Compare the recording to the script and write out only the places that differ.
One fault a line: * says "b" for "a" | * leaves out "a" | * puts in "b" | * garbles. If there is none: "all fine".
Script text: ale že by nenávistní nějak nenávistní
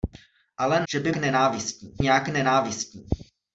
all fine